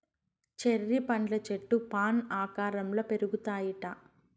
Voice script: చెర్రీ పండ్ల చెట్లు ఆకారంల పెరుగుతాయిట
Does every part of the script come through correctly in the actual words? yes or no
no